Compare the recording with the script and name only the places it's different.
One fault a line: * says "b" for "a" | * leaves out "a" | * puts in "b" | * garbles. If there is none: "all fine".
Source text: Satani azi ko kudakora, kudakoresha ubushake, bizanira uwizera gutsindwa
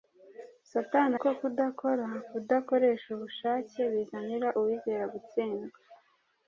* leaves out "azi"